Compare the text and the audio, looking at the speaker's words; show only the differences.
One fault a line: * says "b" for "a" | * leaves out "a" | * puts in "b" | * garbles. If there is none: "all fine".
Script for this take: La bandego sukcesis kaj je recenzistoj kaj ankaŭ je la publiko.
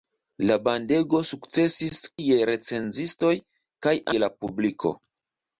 * leaves out "kaj"
* leaves out "ankaŭ"